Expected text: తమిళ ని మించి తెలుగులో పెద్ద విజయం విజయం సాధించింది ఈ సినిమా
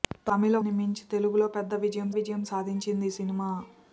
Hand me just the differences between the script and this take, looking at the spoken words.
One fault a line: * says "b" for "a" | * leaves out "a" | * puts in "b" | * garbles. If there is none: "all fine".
all fine